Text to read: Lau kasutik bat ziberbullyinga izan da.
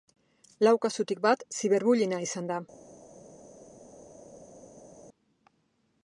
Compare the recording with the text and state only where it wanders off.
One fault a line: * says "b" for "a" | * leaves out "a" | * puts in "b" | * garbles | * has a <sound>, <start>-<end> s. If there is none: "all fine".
all fine